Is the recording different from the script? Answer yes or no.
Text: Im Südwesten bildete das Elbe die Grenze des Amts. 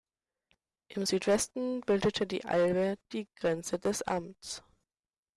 yes